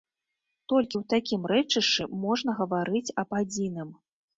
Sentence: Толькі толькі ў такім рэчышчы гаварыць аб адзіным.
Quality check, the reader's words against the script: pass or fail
fail